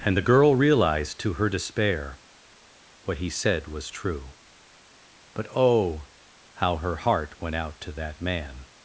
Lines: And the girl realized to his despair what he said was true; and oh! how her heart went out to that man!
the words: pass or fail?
fail